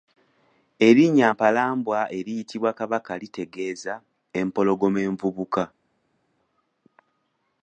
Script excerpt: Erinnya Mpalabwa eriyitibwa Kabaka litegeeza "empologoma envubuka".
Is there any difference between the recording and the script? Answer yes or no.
no